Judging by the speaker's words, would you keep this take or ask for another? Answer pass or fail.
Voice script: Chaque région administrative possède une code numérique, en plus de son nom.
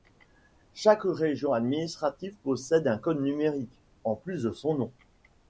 fail